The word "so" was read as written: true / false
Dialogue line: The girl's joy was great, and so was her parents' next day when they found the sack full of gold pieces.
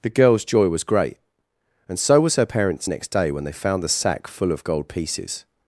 true